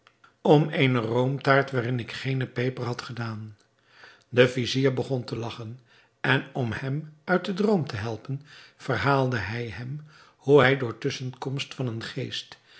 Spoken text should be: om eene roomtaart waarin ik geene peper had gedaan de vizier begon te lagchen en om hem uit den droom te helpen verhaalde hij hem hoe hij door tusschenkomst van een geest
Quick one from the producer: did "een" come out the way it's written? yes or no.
yes